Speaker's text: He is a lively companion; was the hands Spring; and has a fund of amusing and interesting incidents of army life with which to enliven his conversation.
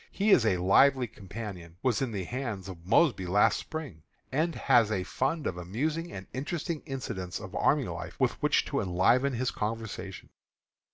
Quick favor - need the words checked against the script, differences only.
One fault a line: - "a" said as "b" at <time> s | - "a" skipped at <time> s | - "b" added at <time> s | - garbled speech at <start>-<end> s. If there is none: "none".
- "in" added at 2.0 s
- "of Mosby last" added at 2.7 s